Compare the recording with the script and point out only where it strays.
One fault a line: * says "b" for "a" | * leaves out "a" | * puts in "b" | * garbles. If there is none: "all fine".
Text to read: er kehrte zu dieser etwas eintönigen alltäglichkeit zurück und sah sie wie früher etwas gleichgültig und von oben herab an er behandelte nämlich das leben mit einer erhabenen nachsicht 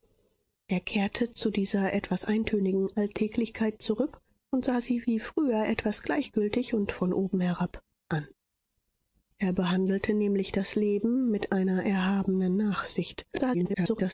* garbles